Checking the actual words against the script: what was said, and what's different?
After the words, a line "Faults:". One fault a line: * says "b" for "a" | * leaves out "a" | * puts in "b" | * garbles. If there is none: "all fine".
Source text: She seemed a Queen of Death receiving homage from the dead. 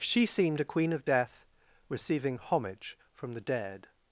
She seemed a Queen of Death receiving homage from the dead.
Faults:
all fine